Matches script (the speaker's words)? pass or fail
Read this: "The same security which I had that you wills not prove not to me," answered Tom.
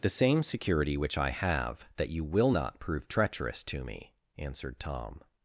fail